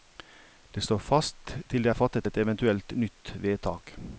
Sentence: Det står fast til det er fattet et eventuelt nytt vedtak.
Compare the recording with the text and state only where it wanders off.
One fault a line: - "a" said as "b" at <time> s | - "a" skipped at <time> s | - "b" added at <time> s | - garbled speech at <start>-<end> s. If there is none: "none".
none